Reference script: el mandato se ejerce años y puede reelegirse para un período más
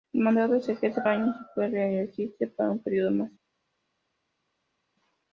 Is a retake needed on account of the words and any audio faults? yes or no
no